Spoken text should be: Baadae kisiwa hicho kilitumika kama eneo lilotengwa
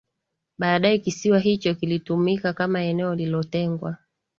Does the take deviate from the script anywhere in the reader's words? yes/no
no